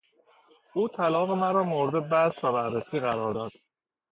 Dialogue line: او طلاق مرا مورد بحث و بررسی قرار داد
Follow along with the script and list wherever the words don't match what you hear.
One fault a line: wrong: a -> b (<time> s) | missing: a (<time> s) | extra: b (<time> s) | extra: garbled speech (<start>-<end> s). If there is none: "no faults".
no faults